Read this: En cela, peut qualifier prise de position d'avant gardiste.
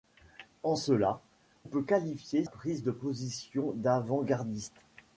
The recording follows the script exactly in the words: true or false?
true